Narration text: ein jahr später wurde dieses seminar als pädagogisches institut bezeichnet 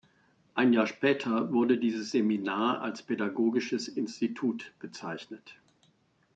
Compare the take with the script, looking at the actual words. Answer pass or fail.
pass